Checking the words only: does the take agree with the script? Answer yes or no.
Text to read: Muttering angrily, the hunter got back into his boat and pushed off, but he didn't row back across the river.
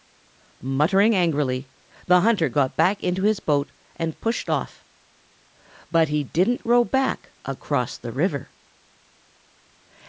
yes